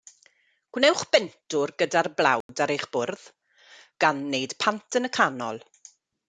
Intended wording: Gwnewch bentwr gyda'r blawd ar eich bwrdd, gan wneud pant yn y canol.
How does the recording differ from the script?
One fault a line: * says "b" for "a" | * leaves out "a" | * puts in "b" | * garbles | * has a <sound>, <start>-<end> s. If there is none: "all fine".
* has a dropout, 2.4-2.5 s